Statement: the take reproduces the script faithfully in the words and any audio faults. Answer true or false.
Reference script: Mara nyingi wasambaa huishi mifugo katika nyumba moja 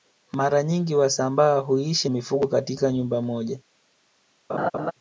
false